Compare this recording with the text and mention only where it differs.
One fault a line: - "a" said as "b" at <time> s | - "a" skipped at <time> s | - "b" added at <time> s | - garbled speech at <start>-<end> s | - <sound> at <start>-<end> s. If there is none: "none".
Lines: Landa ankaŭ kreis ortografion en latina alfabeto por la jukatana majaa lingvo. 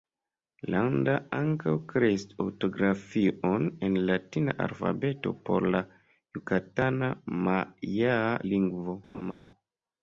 - laugh at 9.1-9.3 s